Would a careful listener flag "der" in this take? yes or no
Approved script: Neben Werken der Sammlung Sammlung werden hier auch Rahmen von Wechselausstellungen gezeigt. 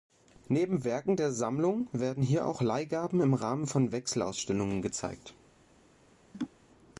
no